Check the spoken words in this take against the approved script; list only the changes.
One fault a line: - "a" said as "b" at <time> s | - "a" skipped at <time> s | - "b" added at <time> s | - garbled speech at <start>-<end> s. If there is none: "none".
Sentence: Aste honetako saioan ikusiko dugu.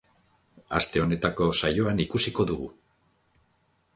none